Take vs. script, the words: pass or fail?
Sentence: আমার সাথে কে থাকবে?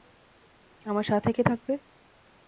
pass